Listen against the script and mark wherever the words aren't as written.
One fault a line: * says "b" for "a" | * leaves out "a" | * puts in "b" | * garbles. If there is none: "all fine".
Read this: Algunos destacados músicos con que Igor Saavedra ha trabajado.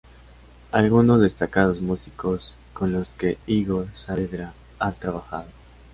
* puts in "los"